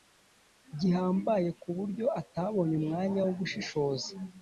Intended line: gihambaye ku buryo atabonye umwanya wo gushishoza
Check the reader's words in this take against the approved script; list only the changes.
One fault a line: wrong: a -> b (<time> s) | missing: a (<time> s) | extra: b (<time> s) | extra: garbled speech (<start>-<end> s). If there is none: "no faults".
no faults